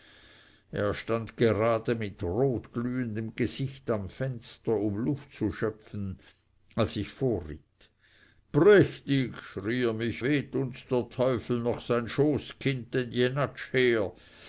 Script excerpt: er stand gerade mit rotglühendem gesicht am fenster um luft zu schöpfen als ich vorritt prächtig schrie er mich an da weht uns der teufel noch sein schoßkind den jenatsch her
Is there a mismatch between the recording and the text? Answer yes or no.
yes